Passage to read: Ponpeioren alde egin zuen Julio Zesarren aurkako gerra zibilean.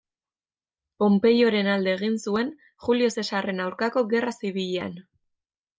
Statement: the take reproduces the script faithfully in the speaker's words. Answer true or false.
true